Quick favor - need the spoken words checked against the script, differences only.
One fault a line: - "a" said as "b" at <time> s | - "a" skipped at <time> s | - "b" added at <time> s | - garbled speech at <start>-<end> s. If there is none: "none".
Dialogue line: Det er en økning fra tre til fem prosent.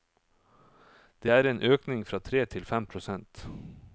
none